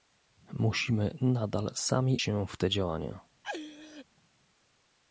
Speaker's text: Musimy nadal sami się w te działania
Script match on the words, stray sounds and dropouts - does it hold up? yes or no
no